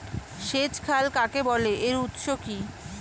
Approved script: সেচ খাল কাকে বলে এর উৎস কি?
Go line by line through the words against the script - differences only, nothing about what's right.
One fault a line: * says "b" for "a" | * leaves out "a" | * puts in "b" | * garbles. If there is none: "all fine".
all fine